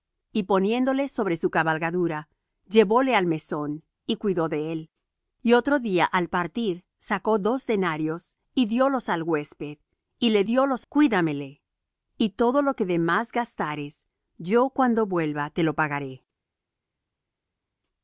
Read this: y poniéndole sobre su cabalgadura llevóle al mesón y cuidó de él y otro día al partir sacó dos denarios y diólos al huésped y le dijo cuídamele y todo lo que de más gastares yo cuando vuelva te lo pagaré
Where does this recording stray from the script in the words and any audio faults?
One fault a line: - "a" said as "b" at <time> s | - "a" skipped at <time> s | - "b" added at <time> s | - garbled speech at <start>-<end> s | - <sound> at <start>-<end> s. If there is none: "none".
- "dijo" said as "diólos" at 10.4 s